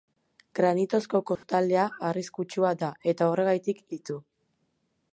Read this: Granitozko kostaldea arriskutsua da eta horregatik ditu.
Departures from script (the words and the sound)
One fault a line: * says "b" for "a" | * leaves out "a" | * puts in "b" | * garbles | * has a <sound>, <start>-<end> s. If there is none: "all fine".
* has a dropout, 1.4-1.4 s